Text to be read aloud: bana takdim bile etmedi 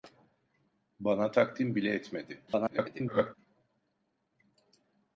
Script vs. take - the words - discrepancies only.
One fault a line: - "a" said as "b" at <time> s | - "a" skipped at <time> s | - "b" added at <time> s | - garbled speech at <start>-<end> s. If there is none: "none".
- garbled speech at 2.5-3.4 s